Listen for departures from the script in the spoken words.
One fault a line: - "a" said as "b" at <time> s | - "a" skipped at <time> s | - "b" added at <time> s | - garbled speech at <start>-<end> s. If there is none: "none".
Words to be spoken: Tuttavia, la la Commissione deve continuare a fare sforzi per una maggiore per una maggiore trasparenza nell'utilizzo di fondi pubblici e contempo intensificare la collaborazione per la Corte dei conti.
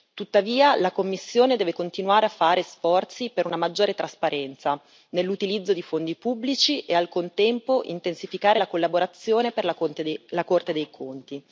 - "la" skipped at 0.9 s
- "per una maggiore" skipped at 3.9 s
- "al" added at 6.9 s